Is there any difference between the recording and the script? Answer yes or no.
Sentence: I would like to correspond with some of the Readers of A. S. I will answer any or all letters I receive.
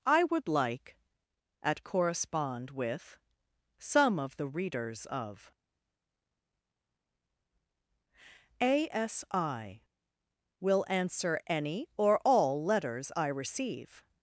yes